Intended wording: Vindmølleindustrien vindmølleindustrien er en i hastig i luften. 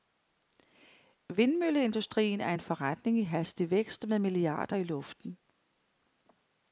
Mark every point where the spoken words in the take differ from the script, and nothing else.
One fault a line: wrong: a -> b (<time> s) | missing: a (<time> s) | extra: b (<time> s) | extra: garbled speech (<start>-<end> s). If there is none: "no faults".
missing: vindmølleindustrien (2.4 s)
extra: forretning (2.6 s)
extra: vækst med milliarder (3.7 s)